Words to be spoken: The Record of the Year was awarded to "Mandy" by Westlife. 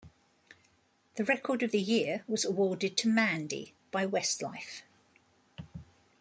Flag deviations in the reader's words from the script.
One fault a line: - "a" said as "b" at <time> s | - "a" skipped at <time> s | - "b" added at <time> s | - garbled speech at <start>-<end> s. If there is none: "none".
none